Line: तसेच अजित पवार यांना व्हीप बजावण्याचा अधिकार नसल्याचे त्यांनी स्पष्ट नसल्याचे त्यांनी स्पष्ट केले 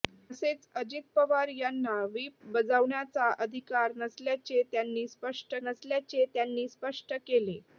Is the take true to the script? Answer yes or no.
yes